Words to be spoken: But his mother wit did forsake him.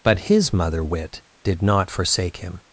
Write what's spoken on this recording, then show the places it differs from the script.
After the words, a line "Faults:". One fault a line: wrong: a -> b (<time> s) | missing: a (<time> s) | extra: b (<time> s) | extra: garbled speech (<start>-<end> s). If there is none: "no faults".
But his mother wit did not forsake him.
Faults:
extra: not (1.6 s)